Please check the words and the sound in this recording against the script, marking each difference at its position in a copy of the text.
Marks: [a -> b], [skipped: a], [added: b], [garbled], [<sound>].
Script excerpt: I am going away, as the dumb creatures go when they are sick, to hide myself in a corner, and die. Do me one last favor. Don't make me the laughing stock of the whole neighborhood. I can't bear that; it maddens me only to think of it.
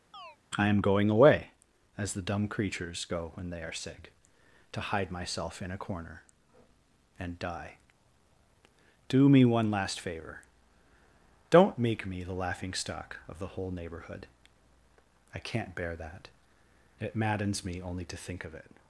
[chirp] I am going away, as the dumb creatures go when they are sick, to hide myself in a corner, and die. Do me one last favor. Don't make me the laughing stock of the whole neighborhood. I can't bear that; it maddens me only to think of it.